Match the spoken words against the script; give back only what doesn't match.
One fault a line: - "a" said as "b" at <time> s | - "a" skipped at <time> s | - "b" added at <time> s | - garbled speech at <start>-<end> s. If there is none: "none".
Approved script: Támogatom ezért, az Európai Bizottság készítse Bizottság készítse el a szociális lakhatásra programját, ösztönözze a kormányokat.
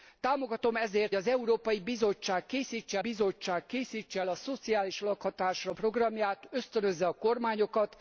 none